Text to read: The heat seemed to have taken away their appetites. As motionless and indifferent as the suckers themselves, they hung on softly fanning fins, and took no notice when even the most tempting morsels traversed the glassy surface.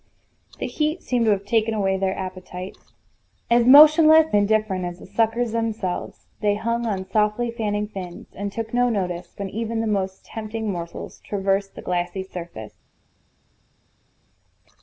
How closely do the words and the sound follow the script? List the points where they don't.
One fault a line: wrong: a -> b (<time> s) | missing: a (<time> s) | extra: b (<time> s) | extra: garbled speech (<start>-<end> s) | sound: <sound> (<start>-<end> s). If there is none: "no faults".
missing: and (4.3 s)